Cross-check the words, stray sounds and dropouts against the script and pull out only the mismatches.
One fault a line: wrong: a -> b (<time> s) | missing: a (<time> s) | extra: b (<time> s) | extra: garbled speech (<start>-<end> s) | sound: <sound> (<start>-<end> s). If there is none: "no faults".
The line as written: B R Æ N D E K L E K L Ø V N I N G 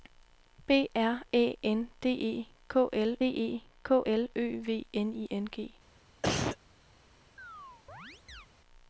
sound: cough (6.2-6.6 s)
sound: chirp (7.4-8.5 s)